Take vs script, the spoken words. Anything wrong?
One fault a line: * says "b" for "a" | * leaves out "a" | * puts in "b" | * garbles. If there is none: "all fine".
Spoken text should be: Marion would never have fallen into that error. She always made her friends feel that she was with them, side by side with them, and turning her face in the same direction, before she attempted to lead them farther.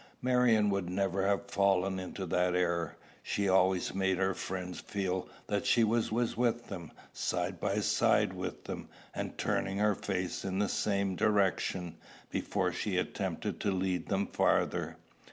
* puts in "was"